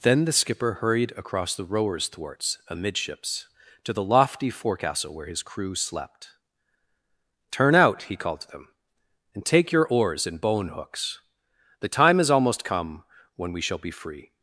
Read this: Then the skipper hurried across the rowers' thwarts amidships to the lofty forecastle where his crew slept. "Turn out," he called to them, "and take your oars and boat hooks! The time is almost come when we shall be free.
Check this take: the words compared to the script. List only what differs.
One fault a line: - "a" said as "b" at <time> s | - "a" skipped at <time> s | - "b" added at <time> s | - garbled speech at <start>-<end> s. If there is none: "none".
- "boat" said as "bone" at 10.4 s